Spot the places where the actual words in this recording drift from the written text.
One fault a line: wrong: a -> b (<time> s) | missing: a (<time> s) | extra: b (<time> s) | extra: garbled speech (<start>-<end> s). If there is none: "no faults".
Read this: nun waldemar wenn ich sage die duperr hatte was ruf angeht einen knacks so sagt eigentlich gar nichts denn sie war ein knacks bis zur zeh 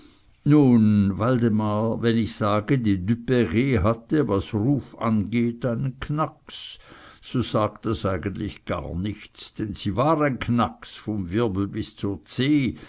extra: das (7.8 s)
extra: vom wirbel (11.0 s)